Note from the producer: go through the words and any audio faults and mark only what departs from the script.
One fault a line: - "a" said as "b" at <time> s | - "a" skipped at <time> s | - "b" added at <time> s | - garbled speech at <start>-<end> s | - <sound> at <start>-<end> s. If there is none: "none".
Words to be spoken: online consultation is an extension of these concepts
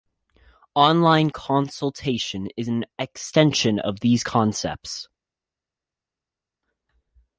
none